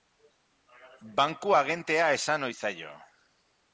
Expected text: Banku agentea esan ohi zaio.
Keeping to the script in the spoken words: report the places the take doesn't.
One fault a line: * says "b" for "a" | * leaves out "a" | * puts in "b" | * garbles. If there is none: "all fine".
all fine